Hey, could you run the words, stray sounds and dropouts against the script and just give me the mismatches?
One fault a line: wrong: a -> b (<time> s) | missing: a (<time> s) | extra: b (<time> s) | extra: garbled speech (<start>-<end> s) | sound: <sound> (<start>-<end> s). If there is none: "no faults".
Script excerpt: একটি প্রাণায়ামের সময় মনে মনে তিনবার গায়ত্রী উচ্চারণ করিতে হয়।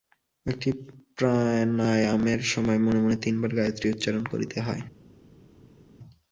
no faults